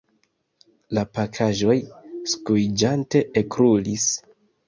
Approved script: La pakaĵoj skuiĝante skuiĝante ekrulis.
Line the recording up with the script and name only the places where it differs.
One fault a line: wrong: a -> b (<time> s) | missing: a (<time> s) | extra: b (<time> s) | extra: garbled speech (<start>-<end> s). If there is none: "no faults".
missing: skuiĝante (3.2 s)